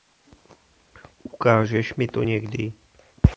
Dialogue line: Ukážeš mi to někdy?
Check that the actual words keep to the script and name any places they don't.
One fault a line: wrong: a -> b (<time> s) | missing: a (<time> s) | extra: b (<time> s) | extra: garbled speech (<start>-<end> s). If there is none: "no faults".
no faults